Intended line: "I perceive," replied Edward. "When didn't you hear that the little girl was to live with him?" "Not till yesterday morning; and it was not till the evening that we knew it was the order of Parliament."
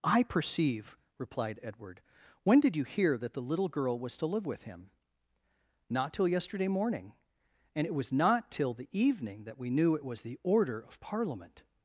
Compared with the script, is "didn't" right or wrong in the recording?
wrong